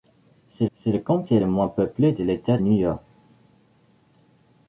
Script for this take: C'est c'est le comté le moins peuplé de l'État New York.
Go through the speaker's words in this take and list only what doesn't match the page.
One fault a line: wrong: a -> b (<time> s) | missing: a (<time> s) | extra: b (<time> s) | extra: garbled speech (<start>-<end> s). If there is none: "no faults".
no faults